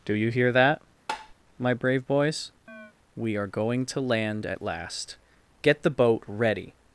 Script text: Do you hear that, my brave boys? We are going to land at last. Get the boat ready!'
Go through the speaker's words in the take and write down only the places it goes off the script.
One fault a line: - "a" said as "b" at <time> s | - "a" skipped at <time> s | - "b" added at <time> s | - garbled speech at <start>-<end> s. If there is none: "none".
none